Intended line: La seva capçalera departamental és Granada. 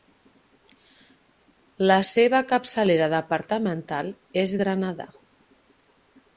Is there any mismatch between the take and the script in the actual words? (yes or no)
no